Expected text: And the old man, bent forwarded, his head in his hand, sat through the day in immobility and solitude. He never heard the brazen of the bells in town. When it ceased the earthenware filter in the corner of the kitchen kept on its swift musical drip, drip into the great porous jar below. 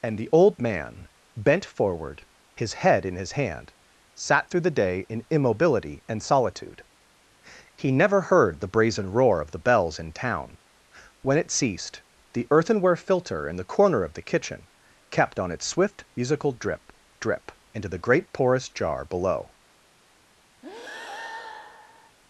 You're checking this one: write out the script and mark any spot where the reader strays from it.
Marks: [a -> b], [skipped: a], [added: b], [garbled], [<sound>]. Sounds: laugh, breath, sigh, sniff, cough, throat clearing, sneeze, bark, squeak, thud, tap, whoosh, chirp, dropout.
And the old man, bent [forwarded, -> forward] his head in his hand, sat through the day in immobility and solitude. He never heard the brazen [added: roar] of the bells in town. When it ceased the earthenware filter in the corner of the kitchen kept on its swift musical drip, drip into the great porous jar below. [breath]